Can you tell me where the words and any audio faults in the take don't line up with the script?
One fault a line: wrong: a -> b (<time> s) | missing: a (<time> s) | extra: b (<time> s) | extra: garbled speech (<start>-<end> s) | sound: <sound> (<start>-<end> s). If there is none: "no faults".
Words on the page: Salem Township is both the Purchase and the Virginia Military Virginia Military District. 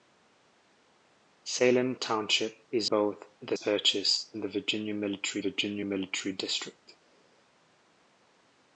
no faults